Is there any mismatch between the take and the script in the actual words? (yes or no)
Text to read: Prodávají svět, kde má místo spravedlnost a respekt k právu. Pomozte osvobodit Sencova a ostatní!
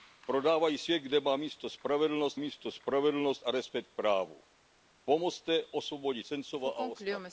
yes